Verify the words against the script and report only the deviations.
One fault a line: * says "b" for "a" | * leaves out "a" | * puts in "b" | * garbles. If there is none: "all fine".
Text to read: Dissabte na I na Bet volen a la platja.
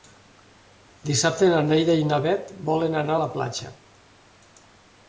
* puts in "Neida"
* puts in "anar"